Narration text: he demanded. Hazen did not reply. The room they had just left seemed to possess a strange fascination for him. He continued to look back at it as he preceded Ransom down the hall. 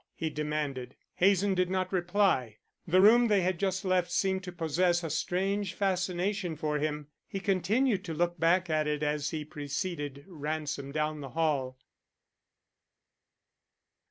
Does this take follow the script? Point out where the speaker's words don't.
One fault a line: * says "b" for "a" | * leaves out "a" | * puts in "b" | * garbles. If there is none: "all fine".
all fine